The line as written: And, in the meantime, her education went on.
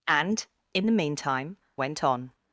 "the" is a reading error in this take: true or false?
false